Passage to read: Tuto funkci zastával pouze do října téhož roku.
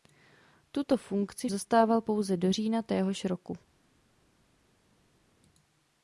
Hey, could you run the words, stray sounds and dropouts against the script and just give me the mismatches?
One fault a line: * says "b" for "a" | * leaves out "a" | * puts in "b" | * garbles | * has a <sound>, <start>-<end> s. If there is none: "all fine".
all fine